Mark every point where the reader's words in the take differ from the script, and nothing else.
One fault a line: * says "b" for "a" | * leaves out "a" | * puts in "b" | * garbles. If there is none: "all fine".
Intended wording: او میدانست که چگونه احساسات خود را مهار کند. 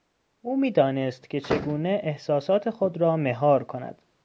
all fine